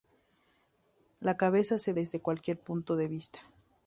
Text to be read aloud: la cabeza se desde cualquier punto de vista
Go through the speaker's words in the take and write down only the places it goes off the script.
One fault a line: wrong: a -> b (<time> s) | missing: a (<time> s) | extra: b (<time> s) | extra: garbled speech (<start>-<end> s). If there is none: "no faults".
no faults